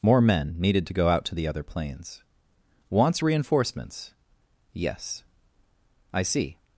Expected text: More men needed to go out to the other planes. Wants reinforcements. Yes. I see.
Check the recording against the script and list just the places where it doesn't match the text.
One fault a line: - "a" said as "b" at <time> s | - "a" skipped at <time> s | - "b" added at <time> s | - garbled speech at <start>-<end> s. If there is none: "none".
none